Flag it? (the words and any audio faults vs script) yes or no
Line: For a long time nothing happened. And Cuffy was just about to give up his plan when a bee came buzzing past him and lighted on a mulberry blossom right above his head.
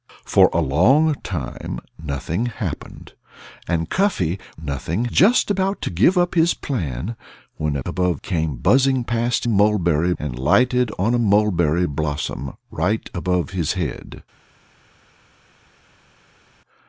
yes